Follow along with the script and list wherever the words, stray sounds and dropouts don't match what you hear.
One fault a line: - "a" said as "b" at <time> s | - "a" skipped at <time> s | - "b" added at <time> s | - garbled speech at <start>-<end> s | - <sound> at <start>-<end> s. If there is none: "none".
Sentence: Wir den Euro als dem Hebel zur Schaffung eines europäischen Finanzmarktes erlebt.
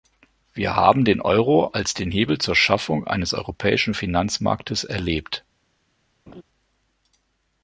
- "haben" added at 0.8 s
- "dem" said as "den" at 1.9 s
- laugh at 6.3-6.4 s